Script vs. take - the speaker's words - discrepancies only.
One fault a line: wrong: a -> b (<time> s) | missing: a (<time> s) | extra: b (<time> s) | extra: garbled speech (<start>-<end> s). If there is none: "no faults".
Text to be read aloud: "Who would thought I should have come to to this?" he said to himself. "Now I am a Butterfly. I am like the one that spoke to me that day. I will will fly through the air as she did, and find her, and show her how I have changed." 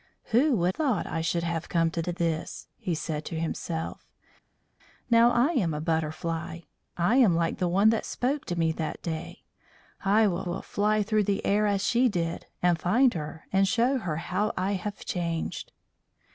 no faults